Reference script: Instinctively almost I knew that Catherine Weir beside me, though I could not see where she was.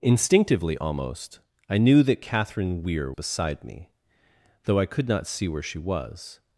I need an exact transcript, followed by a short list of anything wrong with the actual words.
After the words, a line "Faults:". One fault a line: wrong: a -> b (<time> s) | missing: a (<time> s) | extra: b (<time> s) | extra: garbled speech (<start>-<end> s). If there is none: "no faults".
Instinctively almost I knew that Catherine Weir beside me, though I could not see where she was.
Faults:
no faults